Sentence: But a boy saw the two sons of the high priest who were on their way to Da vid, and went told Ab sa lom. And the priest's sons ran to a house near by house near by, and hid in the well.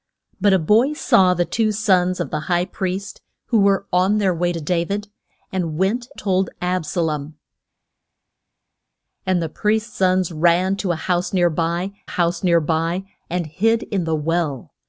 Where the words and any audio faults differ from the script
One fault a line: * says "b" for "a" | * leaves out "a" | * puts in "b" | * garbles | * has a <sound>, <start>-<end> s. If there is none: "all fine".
all fine